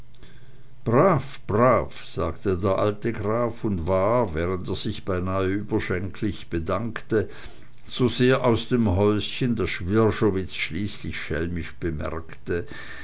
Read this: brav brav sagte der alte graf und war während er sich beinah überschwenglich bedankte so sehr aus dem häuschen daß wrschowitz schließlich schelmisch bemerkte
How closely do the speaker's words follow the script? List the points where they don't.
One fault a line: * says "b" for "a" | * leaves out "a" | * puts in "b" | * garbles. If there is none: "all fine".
all fine